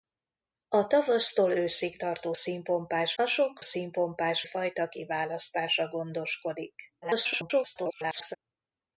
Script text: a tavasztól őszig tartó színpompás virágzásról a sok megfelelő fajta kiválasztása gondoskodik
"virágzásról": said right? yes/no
no